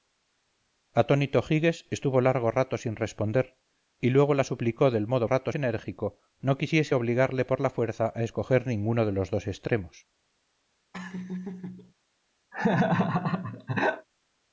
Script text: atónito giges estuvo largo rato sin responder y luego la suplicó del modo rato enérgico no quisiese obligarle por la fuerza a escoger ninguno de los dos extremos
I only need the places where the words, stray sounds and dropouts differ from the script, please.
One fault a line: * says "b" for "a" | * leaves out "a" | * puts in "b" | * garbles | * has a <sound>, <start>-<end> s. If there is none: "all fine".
* has a laugh, 10.9-11.9 s
* has a laugh, 12.5-14.1 s